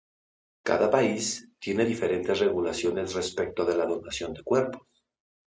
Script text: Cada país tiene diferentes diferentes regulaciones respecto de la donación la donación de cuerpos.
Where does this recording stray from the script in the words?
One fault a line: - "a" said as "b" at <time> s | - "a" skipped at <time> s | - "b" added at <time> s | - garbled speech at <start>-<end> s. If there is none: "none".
- "diferentes" skipped at 2.4 s
- "la donación" skipped at 4.3 s